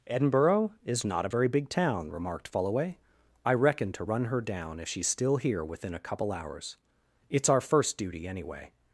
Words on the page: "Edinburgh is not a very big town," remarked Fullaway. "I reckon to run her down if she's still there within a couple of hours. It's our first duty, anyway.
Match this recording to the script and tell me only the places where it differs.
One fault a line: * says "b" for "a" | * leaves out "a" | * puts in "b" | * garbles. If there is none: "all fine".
* says "here" for "there"
* leaves out "of"